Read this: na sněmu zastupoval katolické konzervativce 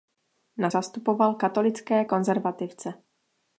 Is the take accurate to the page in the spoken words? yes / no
no